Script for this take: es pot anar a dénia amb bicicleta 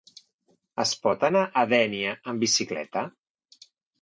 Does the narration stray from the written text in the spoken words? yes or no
no